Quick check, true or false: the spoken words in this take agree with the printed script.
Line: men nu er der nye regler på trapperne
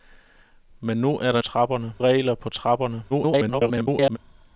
false